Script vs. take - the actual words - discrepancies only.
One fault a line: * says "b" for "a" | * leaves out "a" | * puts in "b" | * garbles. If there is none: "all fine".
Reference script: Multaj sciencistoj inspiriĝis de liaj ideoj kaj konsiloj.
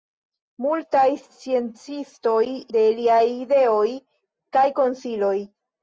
* leaves out "inspiriĝis"